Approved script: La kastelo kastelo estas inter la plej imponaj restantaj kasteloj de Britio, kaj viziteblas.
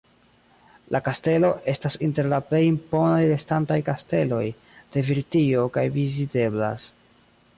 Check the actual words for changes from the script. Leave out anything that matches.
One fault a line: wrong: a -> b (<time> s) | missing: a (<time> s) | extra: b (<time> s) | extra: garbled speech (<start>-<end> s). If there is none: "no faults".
missing: kastelo (1.5 s)